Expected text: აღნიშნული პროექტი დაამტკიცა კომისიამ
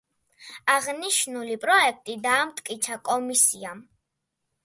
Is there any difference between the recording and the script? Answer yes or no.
no